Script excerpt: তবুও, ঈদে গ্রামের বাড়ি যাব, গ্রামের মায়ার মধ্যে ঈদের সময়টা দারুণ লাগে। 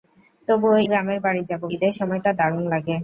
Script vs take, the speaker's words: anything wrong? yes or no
yes